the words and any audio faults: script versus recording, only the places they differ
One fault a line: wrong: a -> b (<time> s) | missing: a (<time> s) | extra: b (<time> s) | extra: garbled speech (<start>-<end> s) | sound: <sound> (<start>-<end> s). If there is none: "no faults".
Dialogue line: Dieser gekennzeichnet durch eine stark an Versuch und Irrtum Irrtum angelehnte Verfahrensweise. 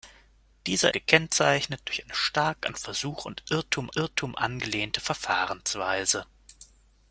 no faults